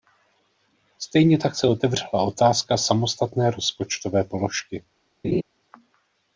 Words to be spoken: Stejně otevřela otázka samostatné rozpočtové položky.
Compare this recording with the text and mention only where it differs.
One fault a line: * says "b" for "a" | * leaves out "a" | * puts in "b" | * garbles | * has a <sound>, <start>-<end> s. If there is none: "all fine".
* puts in "tak se"
* has a laugh, 5.2-5.4 s